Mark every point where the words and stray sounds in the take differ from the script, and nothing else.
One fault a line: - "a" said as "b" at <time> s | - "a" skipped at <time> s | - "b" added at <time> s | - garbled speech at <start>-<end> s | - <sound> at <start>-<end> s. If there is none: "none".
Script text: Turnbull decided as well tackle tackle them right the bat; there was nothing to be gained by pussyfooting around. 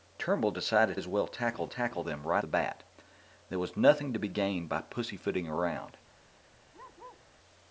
- bark at 6.7-7.3 s